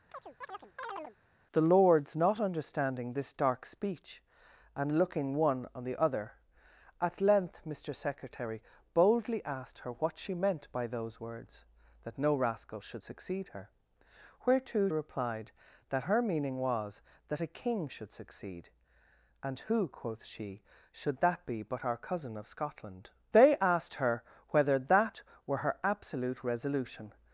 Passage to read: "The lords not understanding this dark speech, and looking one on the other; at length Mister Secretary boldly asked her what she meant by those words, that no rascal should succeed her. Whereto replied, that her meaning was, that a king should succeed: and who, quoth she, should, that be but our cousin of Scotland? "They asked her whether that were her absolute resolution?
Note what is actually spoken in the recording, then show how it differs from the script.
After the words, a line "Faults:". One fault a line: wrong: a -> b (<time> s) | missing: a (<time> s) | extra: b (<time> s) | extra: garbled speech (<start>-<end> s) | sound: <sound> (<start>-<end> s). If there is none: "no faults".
"The lords not understanding this dark speech, and looking one on the other; at length Mister Secretary boldly asked her what she meant by those words, that no rascal should succeed her. Whereto replied, that her meaning was, that a king should succeed: and who, quoth she, should, that be but our cousin of Scotland? "They asked her whether that were her absolute resolution?
Faults:
sound: chirp (0.1-1.2 s)